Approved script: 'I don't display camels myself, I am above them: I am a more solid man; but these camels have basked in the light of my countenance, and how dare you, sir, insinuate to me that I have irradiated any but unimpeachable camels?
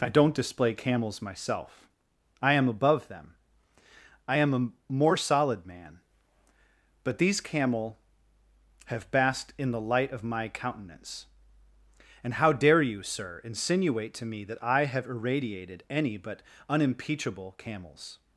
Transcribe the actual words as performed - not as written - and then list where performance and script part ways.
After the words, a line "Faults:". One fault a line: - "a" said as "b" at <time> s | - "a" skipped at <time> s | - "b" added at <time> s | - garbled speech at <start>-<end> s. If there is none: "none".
'I don't display camels myself, I am above them: I am a more solid man; but these camel have basked in the light of my countenance, and how dare you, sir, insinuate to me that I have irradiated any but unimpeachable camels?
Faults:
- "camels" said as "camel" at 7.4 s